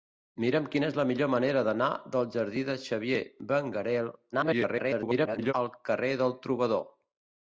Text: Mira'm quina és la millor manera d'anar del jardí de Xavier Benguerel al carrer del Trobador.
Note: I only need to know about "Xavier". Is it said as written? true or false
true